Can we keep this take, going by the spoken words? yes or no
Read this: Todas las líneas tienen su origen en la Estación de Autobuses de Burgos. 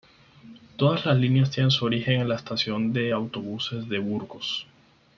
yes